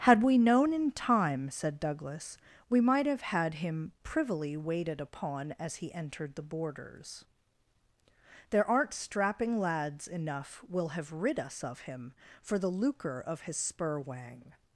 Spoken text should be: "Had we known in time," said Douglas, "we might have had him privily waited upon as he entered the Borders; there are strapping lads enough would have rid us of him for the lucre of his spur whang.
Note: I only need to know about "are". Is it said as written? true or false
false